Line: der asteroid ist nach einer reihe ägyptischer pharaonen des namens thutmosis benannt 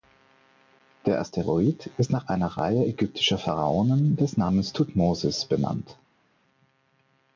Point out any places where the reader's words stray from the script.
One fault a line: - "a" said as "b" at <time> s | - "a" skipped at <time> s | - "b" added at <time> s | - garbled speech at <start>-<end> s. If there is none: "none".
none